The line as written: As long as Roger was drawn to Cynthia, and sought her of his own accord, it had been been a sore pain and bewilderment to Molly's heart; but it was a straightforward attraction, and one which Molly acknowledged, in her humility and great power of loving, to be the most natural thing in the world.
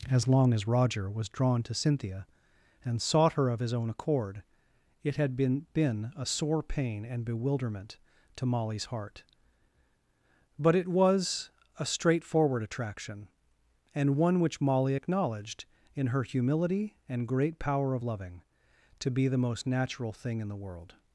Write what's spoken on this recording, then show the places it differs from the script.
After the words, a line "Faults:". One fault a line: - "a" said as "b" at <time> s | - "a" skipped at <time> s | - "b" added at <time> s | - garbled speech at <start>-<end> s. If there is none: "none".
As long as Roger was drawn to Cynthia, and sought her of his own accord, it had been been a sore pain and bewilderment to Molly's heart; but it was a straightforward attraction, and one which Molly acknowledged, in her humility and great power of loving, to be the most natural thing in the world.
Faults:
none